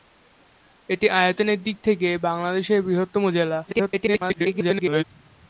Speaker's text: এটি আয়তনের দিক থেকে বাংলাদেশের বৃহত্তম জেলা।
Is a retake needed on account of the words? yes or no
yes